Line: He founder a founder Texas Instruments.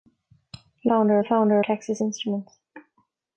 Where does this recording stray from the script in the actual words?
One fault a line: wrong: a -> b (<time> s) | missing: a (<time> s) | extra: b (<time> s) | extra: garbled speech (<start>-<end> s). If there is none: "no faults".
no faults